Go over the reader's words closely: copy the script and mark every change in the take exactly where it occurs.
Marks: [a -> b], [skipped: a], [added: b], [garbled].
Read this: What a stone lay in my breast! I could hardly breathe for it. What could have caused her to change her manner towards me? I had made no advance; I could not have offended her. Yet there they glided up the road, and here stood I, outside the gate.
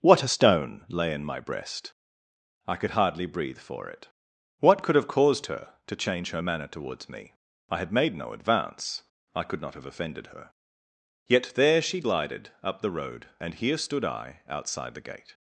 What a stone lay in my breast! I could hardly breathe for it. What could have caused her to change her manner towards me? I had made no advance; I could not have offended her. Yet there [they -> she] glided up the road, and here stood I, outside the gate.